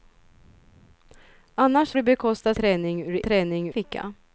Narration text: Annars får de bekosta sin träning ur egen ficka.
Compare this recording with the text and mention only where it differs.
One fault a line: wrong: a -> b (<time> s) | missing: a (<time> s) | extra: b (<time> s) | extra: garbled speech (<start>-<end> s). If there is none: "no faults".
missing: får (1.9 s)
missing: sin (2.5 s)
wrong: egen -> träning (3.2 s)